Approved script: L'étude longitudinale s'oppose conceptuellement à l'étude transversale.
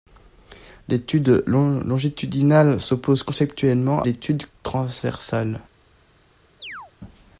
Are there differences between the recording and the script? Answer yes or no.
yes